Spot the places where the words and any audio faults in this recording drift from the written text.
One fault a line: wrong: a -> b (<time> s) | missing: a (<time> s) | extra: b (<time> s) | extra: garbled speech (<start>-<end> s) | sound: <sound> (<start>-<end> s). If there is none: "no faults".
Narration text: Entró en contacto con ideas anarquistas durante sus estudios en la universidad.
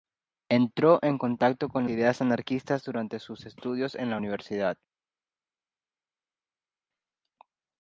no faults